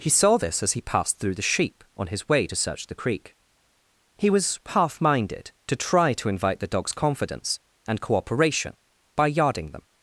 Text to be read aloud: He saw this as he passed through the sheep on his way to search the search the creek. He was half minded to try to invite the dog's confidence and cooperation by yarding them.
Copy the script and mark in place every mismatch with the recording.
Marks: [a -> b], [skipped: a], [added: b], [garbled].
He saw this as he passed through the sheep on his way to search the [skipped: search the] creek. He was half minded to try to invite the dog's confidence and cooperation by yarding them.